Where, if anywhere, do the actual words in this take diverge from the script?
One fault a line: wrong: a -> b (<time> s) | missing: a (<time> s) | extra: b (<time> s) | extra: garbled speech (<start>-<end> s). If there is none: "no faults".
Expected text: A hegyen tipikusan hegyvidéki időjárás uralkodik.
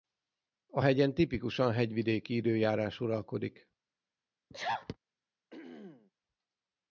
no faults